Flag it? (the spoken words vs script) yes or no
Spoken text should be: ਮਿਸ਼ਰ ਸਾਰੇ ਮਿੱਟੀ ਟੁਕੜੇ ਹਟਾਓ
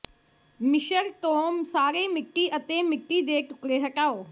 yes